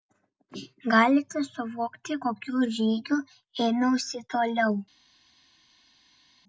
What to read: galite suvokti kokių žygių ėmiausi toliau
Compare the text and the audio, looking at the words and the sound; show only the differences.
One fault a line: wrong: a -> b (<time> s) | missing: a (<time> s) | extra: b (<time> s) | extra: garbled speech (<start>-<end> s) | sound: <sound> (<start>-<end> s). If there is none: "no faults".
no faults